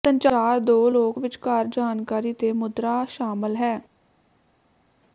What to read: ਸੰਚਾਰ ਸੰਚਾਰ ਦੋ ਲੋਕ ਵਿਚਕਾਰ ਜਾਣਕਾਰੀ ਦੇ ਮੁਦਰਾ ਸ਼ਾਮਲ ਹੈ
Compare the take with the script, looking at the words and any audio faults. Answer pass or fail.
fail